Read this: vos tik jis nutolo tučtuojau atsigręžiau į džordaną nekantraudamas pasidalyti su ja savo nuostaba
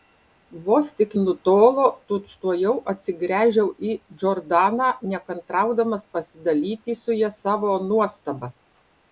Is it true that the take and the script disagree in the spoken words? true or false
true